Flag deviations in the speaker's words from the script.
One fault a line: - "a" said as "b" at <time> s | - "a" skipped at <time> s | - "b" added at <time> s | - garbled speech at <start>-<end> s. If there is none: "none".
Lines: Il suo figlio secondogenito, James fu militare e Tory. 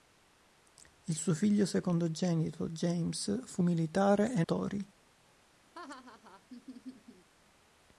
none